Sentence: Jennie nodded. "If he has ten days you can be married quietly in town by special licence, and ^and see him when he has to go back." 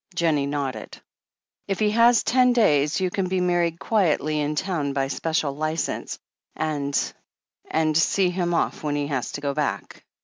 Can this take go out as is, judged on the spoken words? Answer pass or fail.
fail